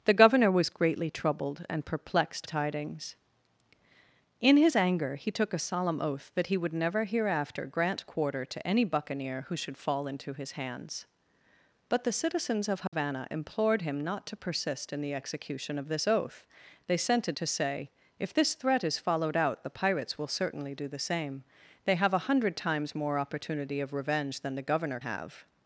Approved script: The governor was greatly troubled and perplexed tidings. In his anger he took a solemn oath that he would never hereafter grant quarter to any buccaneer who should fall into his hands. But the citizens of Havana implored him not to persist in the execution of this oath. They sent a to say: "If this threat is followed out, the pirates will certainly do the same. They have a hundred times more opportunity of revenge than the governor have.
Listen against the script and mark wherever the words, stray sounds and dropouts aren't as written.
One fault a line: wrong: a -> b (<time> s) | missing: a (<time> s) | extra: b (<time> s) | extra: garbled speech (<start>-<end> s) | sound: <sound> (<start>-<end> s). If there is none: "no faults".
sound: dropout (12.9-12.9 s)